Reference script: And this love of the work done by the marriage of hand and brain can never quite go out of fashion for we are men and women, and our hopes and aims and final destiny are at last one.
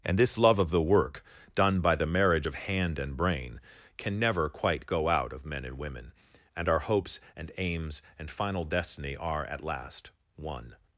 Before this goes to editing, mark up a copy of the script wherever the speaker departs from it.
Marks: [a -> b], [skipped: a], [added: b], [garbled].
And this love of the work done by the marriage of hand and brain can never quite go out of [skipped: fashion for we are] men and women, and our hopes and aims and final destiny are at last one.